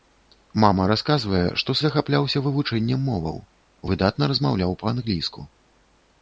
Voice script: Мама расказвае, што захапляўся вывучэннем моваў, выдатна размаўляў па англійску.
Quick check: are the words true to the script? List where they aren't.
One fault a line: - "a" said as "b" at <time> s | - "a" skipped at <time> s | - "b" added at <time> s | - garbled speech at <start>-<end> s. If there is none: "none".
none